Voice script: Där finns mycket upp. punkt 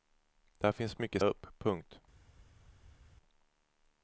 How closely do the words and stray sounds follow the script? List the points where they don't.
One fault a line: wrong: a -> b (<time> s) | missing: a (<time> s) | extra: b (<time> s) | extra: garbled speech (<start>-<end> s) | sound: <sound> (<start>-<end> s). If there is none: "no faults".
no faults